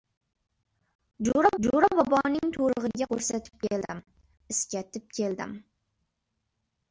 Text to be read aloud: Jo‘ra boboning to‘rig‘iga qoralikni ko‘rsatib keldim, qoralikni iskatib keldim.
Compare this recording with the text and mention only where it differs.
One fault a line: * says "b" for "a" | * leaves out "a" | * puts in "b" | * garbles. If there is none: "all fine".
* puts in "jo‘ra"
* leaves out "qoralikni"
* leaves out "qoralikni"